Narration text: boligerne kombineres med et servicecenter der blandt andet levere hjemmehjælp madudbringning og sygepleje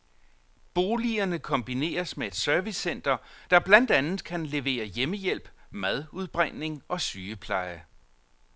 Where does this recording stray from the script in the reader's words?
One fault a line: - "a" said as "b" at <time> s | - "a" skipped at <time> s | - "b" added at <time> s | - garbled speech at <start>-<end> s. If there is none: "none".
- "kan" added at 4.2 s